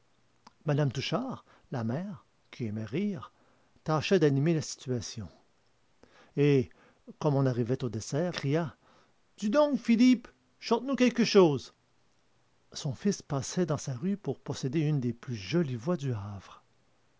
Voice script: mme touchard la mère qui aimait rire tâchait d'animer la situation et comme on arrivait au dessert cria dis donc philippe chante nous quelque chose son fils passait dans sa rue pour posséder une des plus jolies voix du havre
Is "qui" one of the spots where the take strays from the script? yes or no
no